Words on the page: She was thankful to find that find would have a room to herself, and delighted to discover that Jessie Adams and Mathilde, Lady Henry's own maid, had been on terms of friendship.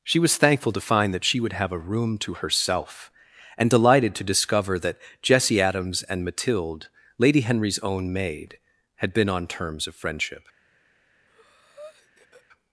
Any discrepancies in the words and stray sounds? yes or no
yes